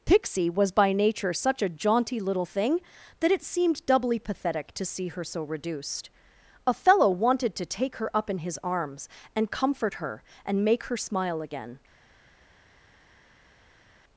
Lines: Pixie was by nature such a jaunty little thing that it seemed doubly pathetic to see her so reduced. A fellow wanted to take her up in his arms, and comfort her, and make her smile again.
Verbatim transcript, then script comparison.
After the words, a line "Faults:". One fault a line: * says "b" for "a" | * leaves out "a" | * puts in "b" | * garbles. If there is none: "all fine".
Pixie was by nature such a jaunty little thing that it seemed doubly pathetic to see her so reduced. A fellow wanted to take her up in his arms, and comfort her, and make her smile again.
Faults:
all fine